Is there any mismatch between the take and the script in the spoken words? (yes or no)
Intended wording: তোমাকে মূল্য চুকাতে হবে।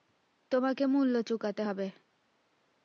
no